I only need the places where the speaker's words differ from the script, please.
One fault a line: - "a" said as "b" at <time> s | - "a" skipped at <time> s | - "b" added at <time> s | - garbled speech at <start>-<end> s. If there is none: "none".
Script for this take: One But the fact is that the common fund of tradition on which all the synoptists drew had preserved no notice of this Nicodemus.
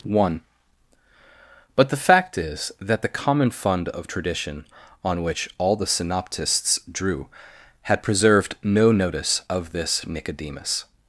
none